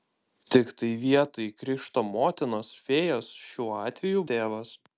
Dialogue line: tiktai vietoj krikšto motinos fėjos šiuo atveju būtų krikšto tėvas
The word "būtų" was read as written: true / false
false